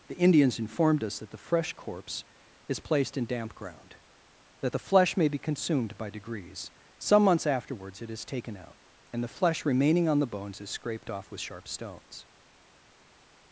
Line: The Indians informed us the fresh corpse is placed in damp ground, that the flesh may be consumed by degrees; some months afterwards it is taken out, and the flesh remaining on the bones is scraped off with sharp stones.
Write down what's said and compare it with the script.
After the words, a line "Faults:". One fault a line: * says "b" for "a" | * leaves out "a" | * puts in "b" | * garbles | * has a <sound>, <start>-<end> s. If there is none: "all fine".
The Indians informed us that the fresh corpse is placed in damp ground, that the flesh may be consumed by degrees; some months afterwards it is taken out, and the flesh remaining on the bones is scraped off with sharp stones.
Faults:
* puts in "that"